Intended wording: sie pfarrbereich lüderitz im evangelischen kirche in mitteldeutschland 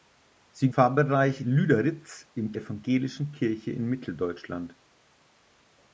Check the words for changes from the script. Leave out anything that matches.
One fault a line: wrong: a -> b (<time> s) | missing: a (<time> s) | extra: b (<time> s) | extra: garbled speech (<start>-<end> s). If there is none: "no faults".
no faults